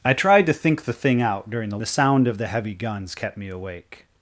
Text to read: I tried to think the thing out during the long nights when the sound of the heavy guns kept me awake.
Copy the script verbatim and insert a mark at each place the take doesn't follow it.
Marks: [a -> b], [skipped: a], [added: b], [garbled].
I tried to think the thing out during the [skipped: long nights when] the sound of the heavy guns kept me awake.